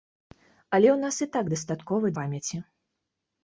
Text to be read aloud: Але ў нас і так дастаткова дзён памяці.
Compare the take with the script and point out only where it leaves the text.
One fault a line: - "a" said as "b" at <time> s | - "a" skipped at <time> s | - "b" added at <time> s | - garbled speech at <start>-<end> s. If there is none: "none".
- "дзён" skipped at 2.1 s